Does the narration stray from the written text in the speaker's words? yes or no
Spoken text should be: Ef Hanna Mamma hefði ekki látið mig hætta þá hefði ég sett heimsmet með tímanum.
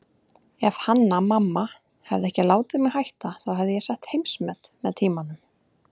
no